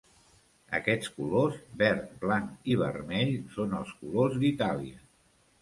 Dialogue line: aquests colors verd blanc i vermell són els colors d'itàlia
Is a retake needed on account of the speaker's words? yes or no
no